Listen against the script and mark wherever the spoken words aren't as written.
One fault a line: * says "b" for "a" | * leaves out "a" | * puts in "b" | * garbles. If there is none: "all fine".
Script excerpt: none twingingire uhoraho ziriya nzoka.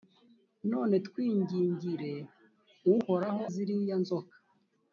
all fine